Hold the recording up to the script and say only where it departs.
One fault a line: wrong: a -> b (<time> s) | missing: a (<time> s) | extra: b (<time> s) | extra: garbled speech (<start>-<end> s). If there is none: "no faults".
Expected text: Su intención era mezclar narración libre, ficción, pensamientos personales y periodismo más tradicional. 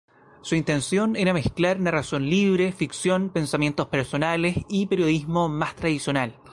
no faults